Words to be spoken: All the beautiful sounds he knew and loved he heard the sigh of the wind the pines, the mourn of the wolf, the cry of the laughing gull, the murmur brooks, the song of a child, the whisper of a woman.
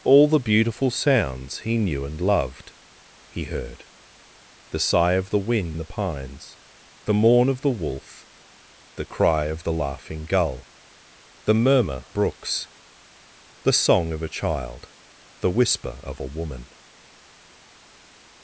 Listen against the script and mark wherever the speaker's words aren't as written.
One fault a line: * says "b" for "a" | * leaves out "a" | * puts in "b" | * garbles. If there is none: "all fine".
all fine